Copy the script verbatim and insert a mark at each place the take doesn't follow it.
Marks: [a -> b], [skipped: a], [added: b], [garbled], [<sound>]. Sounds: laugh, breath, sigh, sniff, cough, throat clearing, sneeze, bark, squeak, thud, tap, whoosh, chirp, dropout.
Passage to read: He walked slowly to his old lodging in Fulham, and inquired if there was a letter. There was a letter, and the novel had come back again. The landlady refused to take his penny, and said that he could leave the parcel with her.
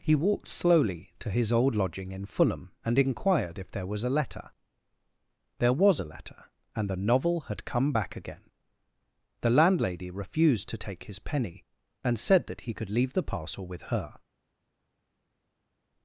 He walked slowly to his old lodging in Fulham, and inquired if there was a letter. There was a letter, and the novel had come back again. The landlady refused to take his penny, and said that he could leave the parcel with her.